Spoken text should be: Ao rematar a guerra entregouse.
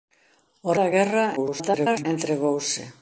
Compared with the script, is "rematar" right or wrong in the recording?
wrong